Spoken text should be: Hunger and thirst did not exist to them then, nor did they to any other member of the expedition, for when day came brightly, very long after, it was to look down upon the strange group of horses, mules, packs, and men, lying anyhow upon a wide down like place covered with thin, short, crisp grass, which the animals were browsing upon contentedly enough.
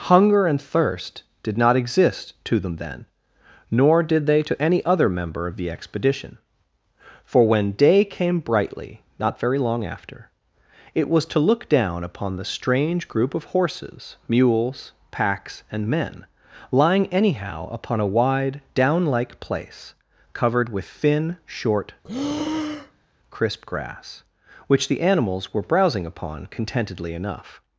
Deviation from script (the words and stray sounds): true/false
true